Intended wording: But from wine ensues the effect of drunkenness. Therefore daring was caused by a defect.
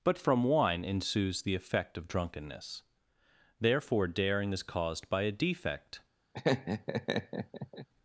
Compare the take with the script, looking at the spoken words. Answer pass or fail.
fail